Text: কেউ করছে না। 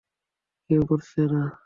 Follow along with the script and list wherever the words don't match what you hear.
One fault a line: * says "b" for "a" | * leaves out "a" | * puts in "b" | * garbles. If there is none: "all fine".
all fine